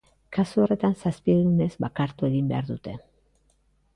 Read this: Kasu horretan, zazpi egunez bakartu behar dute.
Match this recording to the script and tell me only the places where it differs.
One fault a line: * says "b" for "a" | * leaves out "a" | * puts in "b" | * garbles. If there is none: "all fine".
* puts in "egin"